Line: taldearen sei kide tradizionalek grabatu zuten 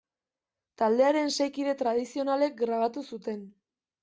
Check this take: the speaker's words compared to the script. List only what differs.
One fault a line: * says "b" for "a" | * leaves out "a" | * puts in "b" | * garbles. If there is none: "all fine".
all fine